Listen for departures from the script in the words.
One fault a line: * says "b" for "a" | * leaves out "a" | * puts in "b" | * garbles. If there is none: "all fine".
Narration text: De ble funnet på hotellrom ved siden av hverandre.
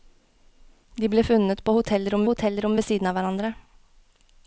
* puts in "hotellrom"